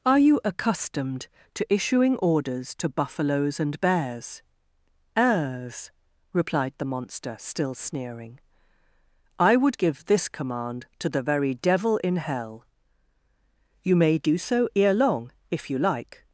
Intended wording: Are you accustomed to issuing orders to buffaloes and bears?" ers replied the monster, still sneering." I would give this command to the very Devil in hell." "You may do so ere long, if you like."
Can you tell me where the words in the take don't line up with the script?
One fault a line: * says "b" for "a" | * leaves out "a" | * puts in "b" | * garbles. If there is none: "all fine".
all fine